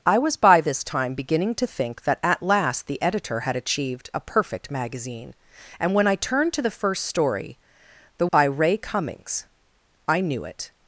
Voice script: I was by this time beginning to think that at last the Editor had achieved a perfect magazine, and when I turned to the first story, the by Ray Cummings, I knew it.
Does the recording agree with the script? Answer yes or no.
yes